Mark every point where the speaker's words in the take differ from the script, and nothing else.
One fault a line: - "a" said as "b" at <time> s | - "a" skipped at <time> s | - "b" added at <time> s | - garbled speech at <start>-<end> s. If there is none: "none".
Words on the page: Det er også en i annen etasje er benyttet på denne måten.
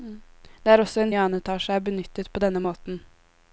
none